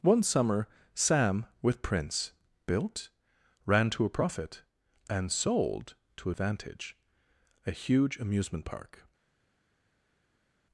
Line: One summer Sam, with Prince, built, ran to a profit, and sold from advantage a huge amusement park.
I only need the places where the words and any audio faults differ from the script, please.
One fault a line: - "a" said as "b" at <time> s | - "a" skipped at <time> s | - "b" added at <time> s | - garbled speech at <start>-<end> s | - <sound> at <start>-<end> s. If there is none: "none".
- "from" said as "to" at 6.2 s